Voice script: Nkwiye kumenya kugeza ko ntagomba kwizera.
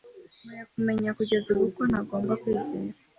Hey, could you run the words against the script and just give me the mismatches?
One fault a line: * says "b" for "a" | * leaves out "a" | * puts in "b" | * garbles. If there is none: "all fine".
* puts in "ubu"